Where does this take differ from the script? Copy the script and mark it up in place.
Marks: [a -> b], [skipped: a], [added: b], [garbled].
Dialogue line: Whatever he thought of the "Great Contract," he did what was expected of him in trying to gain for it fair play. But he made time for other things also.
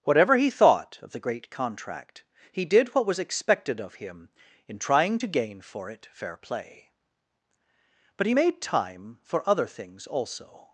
Whatever he thought of the "Great Contract," he did what was expected of him in trying to gain for it fair play. But he made time for other things also.